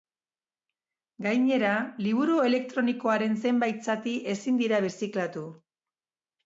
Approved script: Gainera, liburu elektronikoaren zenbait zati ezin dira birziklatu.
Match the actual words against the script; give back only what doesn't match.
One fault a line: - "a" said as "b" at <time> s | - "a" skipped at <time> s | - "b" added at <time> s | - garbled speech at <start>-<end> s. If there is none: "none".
none